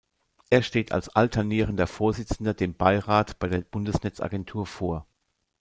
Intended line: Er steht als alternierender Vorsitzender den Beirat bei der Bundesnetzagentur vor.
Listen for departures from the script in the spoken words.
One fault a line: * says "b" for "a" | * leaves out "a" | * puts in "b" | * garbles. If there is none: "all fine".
* says "dem" for "den"